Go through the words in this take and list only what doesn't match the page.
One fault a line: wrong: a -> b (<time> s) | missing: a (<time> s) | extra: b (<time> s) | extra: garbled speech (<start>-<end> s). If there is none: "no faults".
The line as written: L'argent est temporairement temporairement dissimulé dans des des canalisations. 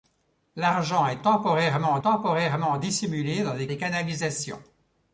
no faults